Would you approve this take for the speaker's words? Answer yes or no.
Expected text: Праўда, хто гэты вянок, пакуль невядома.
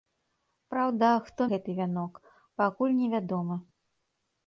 yes